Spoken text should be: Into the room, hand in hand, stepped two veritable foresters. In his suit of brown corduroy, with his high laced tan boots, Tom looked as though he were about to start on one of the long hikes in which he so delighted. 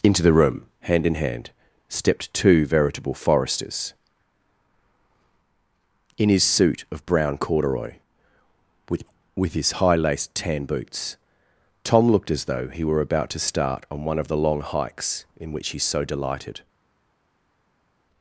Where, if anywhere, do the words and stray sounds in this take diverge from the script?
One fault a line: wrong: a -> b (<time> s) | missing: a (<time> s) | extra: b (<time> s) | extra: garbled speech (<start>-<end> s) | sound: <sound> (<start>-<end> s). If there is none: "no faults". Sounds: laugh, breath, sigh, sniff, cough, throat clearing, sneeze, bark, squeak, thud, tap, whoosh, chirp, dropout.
extra: with (9.4 s)